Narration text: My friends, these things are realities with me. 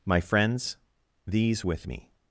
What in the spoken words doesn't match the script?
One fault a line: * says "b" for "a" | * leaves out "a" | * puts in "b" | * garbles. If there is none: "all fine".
* leaves out "things are realities"